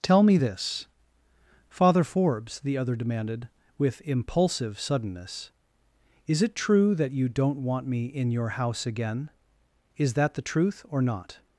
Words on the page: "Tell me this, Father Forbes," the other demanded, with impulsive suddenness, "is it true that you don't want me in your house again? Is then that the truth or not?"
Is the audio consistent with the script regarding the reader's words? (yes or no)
no